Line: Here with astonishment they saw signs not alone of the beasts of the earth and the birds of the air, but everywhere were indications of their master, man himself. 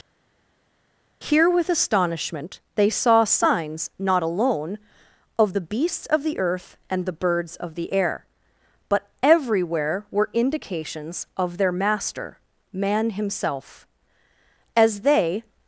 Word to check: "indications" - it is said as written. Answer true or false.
true